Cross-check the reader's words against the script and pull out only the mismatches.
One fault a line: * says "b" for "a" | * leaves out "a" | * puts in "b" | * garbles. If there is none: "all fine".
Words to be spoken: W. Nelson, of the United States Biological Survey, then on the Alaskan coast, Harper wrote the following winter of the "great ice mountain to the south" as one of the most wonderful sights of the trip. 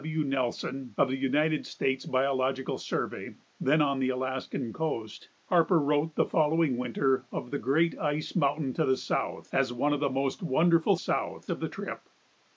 * says "south" for "sights"